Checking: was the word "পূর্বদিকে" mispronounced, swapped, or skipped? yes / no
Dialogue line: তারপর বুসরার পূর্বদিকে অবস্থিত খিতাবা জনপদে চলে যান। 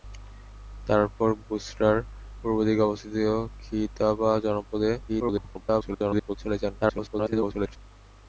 no